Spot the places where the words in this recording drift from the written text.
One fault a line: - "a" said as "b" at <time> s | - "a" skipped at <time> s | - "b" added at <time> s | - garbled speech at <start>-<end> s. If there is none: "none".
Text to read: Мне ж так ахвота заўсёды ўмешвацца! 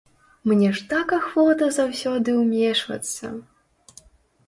none